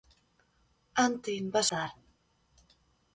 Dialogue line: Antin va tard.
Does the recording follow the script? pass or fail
pass